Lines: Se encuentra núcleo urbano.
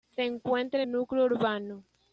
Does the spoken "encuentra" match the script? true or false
true